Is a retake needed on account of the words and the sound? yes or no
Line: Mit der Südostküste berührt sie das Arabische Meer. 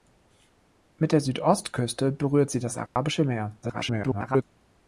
yes